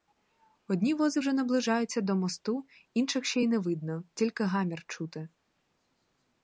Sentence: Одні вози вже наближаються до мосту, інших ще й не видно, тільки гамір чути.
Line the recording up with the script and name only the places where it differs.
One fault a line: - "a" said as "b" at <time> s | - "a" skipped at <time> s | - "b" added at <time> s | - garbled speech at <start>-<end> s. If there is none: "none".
none